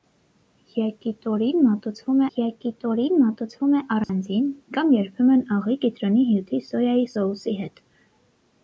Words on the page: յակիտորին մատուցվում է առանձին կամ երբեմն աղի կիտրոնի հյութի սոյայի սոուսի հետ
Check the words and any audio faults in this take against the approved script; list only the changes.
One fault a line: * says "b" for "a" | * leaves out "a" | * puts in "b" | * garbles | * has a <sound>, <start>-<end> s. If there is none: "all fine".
* puts in "յակիտորին մատուցվում"
* has a dropout, 4.0-4.1 s